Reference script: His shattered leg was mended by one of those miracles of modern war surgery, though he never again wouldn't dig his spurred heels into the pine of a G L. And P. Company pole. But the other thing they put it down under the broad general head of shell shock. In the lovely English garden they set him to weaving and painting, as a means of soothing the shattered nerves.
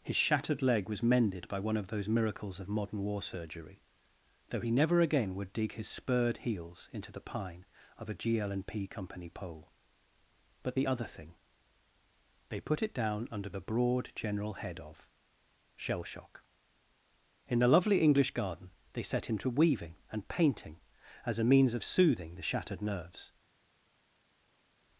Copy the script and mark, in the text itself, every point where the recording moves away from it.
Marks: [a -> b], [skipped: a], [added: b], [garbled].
His shattered leg was mended by one of those miracles of modern war surgery, though he never again [wouldn't -> would] dig his spurred heels into the pine of a G L. And P. Company pole. But the other thing they put it down under the broad general head of shell shock. In the lovely English garden they set him to weaving and painting, as a means of soothing the shattered nerves.